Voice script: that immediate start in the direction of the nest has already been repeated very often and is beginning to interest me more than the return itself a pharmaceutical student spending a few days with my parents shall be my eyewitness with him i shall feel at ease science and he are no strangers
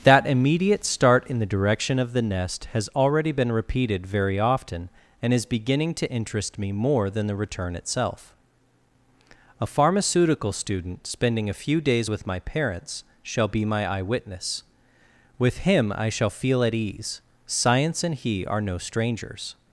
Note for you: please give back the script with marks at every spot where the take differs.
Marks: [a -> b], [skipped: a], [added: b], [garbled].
that immediate start in the direction of the nest has already been repeated very often and is beginning to interest me more than the return itself a pharmaceutical student spending a few days with my parents shall be my eyewitness with him i shall feel at ease science and he are no strangers